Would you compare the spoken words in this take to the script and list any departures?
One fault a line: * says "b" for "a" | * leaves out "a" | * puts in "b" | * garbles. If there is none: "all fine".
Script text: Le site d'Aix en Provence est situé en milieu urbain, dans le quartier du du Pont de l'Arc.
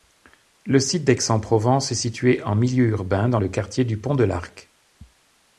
* leaves out "du"